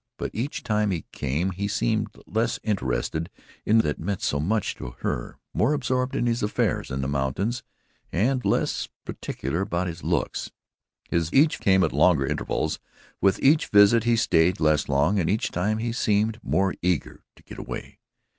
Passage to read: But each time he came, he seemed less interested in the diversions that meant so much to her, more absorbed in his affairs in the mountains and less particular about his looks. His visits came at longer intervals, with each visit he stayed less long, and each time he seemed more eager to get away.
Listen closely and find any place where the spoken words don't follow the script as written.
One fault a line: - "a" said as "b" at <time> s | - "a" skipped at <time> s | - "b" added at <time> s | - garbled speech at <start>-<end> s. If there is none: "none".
- "the diversions" skipped at 3.8 s
- "visits" said as "each" at 11.3 s